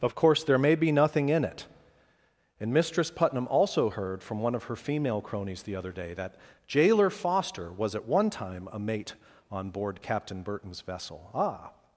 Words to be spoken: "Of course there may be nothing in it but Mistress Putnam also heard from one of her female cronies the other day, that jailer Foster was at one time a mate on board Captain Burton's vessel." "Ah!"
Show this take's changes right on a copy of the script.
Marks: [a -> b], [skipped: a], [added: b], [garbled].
"Of course there may be nothing in it [but -> and] Mistress Putnam also heard from one of her female cronies the other day, that jailer Foster was at one time a mate on board Captain Burton's vessel." "Ah!"